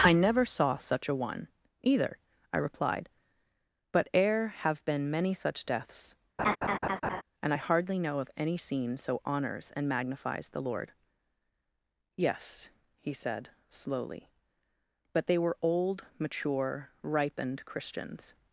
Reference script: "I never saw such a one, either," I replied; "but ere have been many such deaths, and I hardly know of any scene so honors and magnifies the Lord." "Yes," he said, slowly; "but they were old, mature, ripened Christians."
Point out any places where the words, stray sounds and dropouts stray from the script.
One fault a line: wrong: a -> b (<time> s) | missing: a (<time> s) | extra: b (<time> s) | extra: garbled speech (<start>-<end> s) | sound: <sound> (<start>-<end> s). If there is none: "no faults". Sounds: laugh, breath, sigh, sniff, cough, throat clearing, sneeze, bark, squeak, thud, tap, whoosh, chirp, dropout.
sound: laugh (6.4-7.2 s)